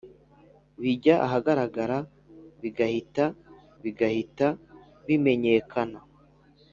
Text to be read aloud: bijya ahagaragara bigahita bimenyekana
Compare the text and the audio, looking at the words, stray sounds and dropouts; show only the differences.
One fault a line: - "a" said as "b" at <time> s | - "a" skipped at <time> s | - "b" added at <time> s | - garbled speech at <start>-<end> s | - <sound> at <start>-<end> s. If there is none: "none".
- "bigahita" added at 3.8 s